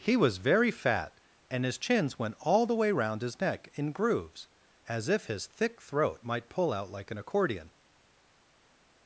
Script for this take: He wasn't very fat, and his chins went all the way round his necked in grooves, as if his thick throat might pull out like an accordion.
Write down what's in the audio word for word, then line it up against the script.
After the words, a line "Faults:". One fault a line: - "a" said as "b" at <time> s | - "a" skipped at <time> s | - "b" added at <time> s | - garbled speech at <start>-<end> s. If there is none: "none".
He was very fat, and his chins went all the way round his neck in grooves, as if his thick throat might pull out like an accordion.
Faults:
- "wasn't" said as "was" at 0.2 s
- "necked" said as "neck" at 3.4 s